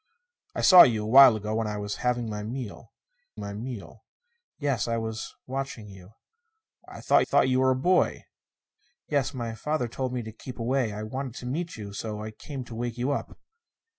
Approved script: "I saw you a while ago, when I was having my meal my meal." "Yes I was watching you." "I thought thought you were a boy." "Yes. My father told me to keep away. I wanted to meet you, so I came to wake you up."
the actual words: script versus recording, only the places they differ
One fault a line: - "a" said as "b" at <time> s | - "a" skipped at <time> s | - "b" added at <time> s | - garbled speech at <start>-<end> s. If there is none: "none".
none